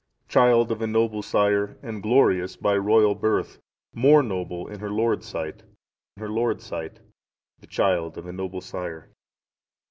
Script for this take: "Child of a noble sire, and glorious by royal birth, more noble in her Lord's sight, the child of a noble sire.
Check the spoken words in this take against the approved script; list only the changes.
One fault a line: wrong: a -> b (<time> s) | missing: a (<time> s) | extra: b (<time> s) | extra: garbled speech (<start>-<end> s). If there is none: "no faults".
extra: her Lord's sight (6.2 s)